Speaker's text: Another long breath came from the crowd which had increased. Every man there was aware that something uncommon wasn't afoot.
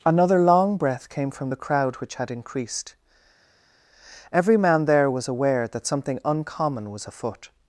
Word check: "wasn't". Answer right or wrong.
wrong